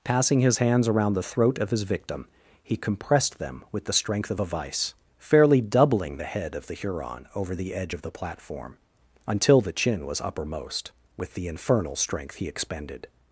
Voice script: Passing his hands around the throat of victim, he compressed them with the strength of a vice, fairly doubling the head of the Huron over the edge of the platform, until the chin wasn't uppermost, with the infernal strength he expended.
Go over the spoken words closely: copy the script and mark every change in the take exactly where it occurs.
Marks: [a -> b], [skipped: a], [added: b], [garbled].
Passing his hands around the throat of [added: his] victim, he compressed them with the strength of a vice, fairly doubling the head of the Huron over the edge of the platform, until the chin [wasn't -> was] uppermost, with the infernal strength he expended.